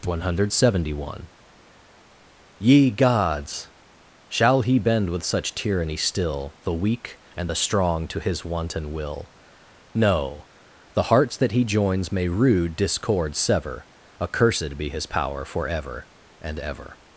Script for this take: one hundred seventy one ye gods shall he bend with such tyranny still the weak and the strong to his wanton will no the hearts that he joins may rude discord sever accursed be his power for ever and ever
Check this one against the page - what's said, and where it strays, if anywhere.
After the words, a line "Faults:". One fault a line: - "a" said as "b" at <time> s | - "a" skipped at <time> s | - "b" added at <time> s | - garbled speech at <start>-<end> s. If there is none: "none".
one hundred seventy one ye gods shall he bend with such tyranny still the weak and the strong to his wanton will no the hearts that he joins may rude discord sever accursed be his power for ever and ever
Faults:
none